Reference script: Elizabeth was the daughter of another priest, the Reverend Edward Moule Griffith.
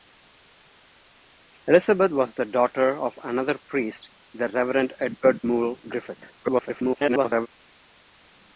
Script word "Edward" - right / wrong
right